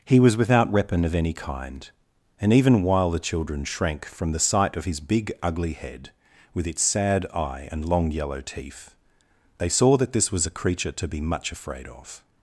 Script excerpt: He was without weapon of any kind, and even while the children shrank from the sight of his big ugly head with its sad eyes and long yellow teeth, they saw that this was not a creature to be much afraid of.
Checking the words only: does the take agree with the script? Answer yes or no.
no